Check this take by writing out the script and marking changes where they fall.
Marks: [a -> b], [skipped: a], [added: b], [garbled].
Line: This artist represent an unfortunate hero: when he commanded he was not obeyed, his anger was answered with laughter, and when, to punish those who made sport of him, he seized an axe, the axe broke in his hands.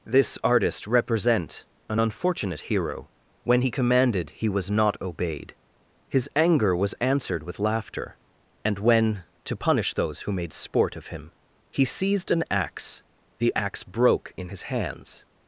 This artist represent an unfortunate hero: when he commanded he was not obeyed, his anger was answered with laughter, and when, to punish those who made sport of him, he seized an axe, the axe broke in his hands.